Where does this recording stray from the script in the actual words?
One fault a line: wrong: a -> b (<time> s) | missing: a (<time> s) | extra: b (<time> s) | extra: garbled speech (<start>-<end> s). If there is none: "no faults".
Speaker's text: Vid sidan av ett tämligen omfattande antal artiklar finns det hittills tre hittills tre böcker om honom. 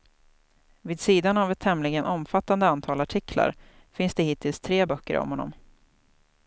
missing: hittills tre (4.8 s)